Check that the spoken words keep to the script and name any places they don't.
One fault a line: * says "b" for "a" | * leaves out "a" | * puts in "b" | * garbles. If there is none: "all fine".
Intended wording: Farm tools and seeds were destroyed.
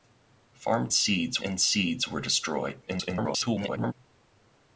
* says "seeds" for "tools"
* garbles